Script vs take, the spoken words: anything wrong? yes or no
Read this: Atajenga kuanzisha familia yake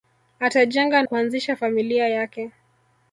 no